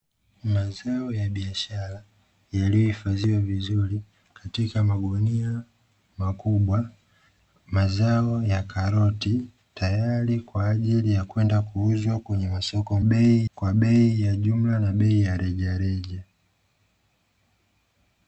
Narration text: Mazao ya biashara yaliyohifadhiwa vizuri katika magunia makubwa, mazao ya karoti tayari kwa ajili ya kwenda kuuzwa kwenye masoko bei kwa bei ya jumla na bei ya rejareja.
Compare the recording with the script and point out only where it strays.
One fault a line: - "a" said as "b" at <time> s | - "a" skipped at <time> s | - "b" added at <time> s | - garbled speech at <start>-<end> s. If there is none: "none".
none